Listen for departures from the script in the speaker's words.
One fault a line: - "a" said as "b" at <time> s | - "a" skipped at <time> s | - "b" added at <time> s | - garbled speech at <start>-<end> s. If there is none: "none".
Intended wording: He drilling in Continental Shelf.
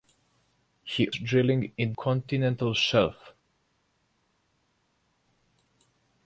none